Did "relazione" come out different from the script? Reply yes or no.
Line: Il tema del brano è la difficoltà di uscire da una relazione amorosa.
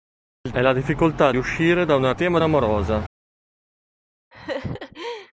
yes